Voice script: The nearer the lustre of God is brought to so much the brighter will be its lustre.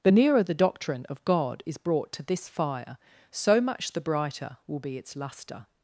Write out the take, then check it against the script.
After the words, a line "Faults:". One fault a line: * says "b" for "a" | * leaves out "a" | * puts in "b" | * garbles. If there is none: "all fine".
The nearer the doctrine of God is brought to this fire, so much the brighter will be its lustre.
Faults:
* says "doctrine" for "lustre"
* puts in "this fire"